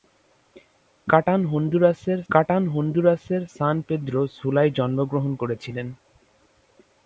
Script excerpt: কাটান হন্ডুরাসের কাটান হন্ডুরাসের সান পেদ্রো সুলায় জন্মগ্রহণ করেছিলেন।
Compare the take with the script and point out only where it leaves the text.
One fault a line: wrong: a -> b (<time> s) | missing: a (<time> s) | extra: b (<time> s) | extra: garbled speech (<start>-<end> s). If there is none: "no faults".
no faults